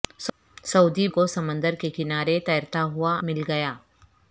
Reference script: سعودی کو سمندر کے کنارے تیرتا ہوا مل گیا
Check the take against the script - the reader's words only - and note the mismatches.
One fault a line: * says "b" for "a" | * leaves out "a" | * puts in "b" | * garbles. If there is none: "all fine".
all fine